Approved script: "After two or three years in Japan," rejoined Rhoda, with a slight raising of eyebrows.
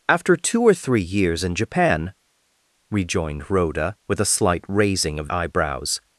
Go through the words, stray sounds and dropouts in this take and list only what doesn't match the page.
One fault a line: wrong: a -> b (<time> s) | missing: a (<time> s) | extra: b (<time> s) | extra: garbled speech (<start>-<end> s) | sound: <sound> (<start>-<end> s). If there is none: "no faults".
no faults